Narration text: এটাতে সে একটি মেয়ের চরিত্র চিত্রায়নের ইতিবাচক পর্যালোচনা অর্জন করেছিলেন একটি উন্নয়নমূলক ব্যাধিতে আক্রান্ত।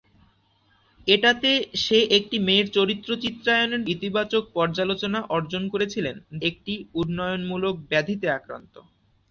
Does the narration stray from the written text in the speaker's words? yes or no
no